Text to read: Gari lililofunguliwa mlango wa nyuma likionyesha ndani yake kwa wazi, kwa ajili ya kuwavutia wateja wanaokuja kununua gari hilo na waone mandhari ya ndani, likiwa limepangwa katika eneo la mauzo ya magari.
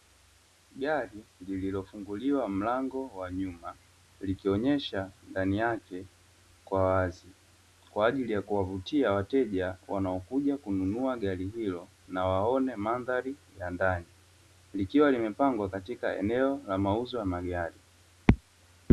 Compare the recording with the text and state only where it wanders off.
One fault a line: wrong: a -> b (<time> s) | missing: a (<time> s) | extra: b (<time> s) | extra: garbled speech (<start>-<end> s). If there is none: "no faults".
no faults